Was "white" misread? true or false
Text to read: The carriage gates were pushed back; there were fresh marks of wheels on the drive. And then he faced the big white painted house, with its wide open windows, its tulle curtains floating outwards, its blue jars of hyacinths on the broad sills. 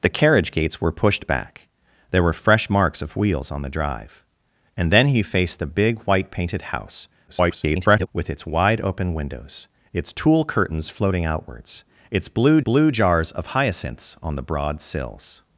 false